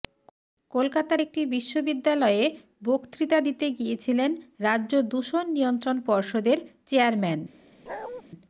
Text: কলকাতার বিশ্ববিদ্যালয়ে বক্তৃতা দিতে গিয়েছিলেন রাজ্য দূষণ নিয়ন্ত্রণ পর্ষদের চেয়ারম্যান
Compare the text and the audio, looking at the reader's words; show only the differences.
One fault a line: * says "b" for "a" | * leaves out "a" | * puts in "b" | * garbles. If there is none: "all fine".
* puts in "একটি"